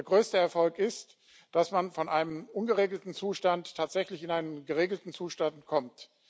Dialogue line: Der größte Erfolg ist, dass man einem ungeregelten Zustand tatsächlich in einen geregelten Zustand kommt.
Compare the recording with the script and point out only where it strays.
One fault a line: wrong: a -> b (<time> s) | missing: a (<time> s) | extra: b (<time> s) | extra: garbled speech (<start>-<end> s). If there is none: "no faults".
extra: von (1.9 s)